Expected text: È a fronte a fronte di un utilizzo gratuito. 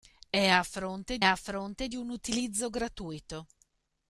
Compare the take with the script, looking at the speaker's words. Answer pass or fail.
pass